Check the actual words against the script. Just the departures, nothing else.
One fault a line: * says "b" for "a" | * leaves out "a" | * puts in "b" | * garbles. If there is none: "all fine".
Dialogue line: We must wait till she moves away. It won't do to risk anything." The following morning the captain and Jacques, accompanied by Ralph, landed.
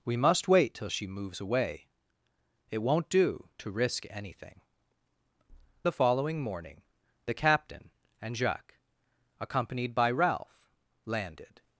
all fine